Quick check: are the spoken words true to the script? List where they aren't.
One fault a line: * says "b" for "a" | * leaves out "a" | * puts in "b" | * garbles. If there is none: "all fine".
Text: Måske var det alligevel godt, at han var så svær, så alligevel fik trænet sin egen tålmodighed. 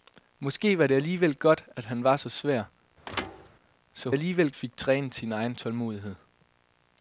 all fine